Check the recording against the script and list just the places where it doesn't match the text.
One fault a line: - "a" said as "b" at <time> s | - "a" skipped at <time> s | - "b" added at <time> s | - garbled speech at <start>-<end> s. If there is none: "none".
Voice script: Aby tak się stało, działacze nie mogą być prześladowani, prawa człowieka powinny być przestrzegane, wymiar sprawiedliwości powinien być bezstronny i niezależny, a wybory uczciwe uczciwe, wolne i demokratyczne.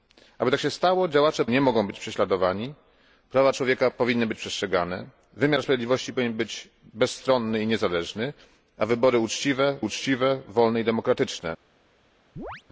none